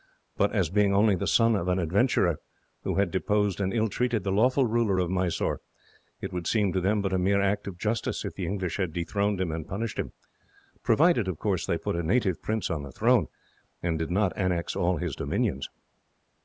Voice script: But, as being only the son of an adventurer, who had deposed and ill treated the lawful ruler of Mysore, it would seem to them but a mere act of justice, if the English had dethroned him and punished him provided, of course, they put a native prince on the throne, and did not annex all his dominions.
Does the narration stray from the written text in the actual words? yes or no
no